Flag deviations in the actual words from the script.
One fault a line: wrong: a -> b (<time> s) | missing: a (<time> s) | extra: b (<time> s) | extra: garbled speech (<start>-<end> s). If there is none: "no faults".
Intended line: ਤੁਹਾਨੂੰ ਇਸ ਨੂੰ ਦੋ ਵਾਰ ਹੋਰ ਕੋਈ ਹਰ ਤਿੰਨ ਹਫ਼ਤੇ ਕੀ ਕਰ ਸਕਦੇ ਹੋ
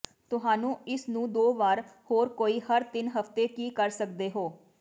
no faults